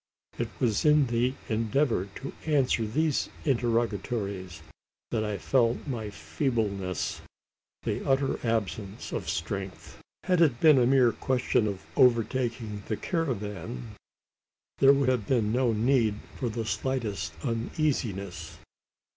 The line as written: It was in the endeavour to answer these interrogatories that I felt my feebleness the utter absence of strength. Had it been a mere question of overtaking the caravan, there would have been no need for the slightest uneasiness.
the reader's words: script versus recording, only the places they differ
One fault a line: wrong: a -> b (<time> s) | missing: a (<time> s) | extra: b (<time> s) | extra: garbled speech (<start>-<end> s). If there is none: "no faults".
no faults